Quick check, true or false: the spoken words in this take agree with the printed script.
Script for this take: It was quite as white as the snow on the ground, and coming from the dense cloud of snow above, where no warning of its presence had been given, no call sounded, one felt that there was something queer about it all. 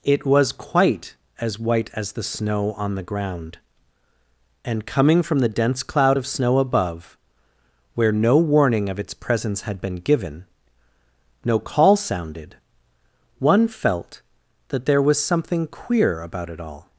true